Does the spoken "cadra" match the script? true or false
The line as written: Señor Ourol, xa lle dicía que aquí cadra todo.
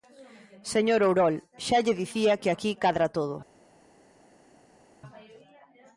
true